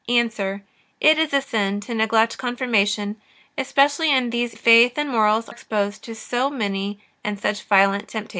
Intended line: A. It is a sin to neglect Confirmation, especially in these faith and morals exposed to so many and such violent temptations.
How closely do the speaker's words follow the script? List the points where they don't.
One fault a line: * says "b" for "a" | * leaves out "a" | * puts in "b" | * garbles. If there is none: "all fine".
all fine